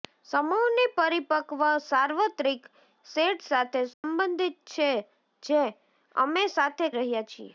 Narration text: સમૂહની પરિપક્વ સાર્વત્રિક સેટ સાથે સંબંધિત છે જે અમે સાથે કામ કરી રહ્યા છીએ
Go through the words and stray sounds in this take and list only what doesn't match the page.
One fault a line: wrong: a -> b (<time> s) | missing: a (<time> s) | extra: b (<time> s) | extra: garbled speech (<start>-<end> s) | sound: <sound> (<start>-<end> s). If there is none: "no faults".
sound: dropout (3.9-4.0 s)
missing: કામ કરી (6.9 s)